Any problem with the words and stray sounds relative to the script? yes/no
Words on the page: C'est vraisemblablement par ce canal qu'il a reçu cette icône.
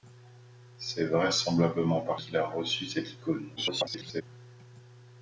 yes